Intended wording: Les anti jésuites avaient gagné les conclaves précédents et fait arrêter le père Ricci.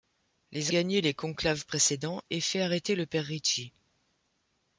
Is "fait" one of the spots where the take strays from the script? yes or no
no